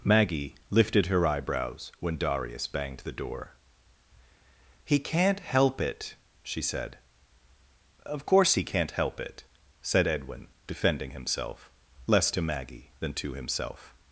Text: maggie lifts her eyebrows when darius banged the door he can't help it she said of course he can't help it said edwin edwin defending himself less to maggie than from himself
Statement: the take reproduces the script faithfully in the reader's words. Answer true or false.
false